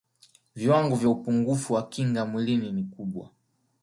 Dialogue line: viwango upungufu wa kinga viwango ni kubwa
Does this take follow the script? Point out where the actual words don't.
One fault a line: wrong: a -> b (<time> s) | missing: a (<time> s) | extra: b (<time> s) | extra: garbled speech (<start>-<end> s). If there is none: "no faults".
extra: vya (0.9 s)
wrong: viwango -> mwilini (2.3 s)